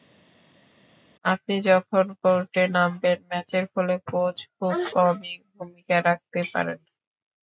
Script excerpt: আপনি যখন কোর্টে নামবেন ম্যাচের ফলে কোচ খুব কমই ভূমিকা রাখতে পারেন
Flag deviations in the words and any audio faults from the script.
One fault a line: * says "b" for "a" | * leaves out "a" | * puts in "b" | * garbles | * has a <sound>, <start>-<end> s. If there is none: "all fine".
all fine